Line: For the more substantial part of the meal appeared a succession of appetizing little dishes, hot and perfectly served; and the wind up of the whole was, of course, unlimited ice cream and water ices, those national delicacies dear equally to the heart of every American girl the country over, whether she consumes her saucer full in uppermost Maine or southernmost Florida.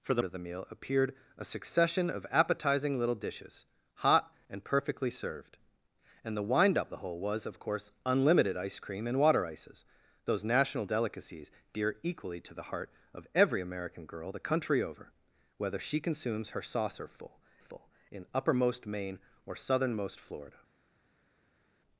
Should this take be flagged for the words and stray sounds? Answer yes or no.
yes